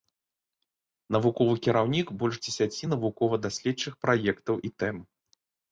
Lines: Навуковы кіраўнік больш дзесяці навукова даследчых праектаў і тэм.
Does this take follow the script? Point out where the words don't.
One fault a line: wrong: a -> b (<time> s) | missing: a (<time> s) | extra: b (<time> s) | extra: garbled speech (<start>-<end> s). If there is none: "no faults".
no faults